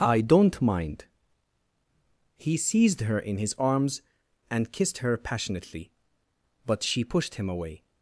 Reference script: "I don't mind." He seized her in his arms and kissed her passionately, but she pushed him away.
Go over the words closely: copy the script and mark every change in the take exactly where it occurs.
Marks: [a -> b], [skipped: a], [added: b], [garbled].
"I don't mind." He seized her in his arms and kissed her passionately, but she pushed him away.